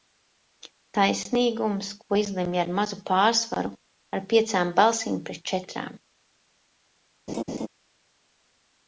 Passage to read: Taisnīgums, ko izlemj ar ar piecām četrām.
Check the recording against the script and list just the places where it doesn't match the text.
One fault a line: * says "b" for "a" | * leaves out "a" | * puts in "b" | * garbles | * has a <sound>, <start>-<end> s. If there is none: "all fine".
* puts in "mazu pārsvaru"
* puts in "balsīm pret"
* has a laugh, 7.3-7.7 s